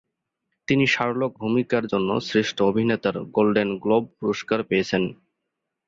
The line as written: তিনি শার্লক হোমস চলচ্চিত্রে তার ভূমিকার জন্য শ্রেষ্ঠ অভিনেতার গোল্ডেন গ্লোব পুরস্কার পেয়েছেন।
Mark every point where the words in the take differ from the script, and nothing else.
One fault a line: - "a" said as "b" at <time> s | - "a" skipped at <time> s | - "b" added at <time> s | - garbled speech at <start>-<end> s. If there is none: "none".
- "হোমস চলচ্চিত্রে তার" skipped at 1.3 s